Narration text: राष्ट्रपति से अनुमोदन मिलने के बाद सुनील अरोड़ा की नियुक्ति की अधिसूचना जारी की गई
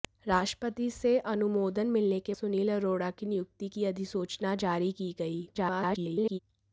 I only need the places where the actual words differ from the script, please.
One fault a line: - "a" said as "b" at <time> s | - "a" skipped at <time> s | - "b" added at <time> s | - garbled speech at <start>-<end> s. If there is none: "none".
- "बाद" skipped at 2.4 s
- garbled speech at 5.5-6.4 s